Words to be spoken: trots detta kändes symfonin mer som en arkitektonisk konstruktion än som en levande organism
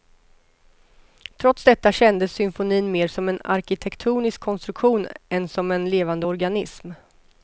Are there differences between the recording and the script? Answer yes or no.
no